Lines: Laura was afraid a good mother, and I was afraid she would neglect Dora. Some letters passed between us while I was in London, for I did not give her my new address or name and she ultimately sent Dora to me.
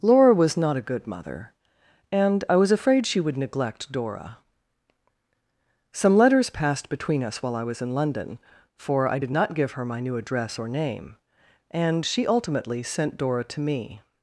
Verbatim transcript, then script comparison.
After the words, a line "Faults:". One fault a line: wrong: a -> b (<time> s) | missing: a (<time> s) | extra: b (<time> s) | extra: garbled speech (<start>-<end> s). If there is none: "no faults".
Laura was not a good mother, and I was afraid she would neglect Dora. Some letters passed between us while I was in London, for I did not give her my new address or name and she ultimately sent Dora to me.
Faults:
wrong: afraid -> not (0.6 s)